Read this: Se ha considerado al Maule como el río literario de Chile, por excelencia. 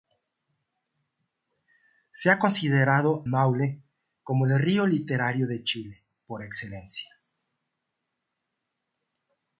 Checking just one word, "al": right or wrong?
wrong